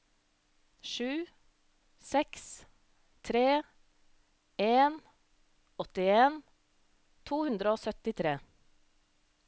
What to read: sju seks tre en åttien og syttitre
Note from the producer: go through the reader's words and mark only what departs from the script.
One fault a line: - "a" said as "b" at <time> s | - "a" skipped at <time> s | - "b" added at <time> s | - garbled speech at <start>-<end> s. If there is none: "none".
- "to hundre" added at 7.3 s